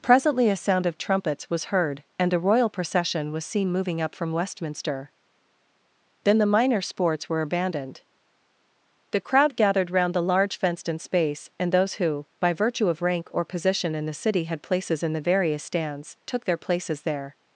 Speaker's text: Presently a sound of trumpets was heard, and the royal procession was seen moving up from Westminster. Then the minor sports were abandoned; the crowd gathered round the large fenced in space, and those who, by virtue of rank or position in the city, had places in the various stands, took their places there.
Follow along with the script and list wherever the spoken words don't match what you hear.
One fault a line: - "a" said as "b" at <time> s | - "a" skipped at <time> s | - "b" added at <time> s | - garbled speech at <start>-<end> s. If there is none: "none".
- "the" said as "a" at 2.3 s